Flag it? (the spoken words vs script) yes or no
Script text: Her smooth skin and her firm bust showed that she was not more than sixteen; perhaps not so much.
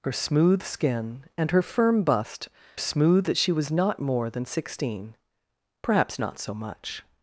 yes